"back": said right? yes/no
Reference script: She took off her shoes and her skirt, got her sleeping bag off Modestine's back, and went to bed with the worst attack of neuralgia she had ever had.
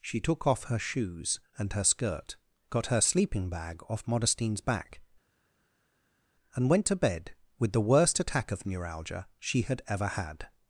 yes